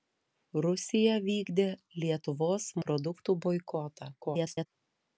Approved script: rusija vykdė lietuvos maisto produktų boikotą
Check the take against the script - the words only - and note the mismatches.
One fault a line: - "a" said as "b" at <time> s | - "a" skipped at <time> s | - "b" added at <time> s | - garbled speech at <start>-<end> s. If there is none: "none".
- "maisto" skipped at 2.7 s
- garbled speech at 4.2-4.7 s